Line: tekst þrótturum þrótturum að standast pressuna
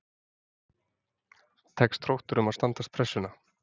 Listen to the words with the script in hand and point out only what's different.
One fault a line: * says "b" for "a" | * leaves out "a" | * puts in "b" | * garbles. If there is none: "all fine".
* leaves out "þrótturum"